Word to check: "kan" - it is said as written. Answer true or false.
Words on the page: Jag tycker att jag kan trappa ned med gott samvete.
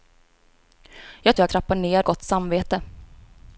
false